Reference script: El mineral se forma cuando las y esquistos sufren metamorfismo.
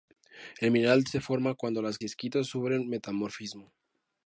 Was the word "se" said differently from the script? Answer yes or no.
no